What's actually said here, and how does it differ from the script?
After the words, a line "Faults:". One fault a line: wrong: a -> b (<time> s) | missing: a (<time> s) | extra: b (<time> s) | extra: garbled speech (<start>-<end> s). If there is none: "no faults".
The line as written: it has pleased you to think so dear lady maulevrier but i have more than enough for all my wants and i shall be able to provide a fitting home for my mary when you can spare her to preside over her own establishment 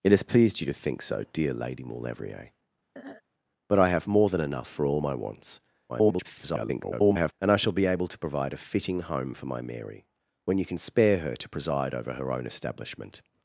it has pleased you to think so dear lady maulevrier but i have more than enough for all my wants [garbled] and i shall be able to provide a fitting home for my mary when you can spare her to preside over her own establishment
Faults:
extra: garbled speech (5.9-7.3 s)